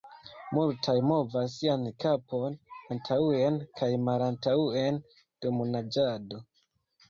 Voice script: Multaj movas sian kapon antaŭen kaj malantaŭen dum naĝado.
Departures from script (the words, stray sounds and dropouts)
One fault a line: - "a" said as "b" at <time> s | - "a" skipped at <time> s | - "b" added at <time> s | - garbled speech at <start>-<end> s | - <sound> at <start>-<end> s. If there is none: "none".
none